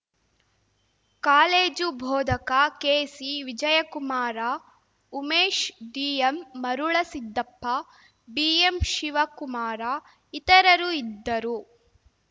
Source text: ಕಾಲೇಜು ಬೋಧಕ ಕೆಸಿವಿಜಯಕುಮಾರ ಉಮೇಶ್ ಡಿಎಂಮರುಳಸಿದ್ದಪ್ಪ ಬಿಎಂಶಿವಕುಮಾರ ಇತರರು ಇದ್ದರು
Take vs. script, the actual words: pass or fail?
pass